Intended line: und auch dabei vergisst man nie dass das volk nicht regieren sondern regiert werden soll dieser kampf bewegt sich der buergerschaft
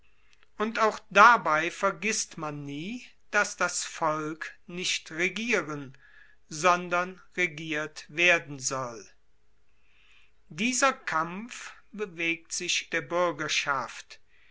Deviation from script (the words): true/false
false